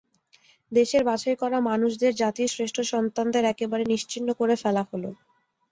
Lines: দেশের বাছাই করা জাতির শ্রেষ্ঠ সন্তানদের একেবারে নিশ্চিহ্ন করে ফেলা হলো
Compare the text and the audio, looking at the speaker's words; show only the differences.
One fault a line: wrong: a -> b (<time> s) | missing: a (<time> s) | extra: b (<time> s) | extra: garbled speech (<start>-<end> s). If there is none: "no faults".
extra: মানুষদের (1.7 s)